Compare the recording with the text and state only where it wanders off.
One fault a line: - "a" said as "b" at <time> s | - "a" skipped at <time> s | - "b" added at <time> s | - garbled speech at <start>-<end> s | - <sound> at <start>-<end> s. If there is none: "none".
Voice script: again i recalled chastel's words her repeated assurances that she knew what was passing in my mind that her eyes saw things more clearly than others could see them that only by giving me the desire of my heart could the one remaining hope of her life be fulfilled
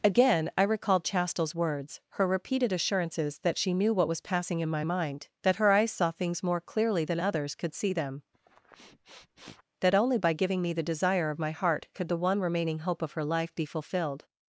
- sniff at 8.3-9.6 s